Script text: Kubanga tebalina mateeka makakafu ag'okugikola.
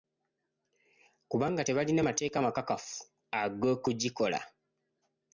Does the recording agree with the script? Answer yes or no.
yes